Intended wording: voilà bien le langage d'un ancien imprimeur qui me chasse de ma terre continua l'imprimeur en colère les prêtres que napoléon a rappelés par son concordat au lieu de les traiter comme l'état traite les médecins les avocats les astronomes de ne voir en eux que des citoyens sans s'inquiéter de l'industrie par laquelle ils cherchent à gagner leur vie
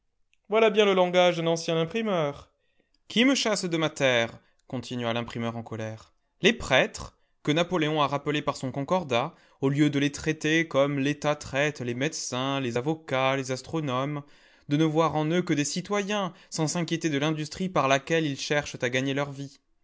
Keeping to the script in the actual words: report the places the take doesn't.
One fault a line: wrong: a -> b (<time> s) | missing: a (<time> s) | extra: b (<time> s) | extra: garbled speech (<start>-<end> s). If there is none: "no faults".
no faults